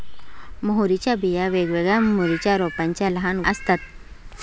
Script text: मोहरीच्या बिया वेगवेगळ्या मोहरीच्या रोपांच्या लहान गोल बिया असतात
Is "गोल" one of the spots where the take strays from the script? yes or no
yes